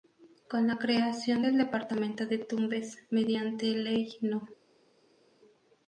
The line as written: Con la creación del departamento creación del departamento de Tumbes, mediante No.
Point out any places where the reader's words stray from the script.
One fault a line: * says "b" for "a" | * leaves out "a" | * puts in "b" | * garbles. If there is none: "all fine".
* leaves out "creación del departamento"
* puts in "Ley"